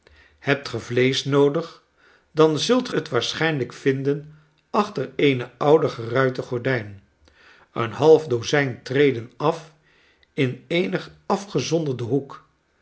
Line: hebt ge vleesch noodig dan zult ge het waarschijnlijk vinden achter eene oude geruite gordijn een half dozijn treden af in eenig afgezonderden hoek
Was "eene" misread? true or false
false